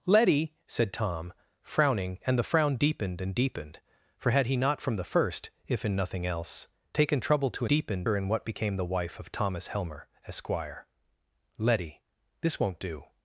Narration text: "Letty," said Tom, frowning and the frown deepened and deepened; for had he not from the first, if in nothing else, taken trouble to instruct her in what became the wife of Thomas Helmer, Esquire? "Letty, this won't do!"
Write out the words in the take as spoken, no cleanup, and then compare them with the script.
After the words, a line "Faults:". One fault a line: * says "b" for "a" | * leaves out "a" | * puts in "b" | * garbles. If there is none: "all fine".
"Letty," said Tom, frowning and the frown deepened and deepened; for had he not from the first, if in nothing else, taken trouble to deepened her in what became the wife of Thomas Helmer, Esquire? "Letty, this won't do!"
Faults:
* says "deepened" for "instruct"